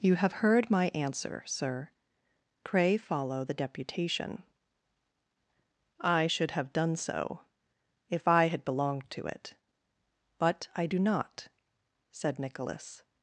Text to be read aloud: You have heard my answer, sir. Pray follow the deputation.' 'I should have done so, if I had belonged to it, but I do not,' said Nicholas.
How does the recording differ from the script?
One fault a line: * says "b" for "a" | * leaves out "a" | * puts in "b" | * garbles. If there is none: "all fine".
all fine